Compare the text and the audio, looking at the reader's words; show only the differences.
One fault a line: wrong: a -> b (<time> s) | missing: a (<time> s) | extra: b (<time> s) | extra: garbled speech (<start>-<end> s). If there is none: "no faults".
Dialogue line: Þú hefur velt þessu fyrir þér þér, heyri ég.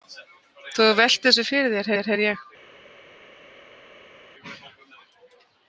no faults